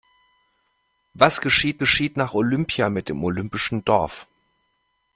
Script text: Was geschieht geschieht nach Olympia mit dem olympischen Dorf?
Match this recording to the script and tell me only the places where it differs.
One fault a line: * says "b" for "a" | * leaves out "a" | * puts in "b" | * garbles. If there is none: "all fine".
all fine